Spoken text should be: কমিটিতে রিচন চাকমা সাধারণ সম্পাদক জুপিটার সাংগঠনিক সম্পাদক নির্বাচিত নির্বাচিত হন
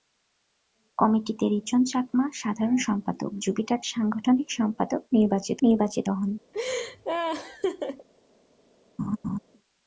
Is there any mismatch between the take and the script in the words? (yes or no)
no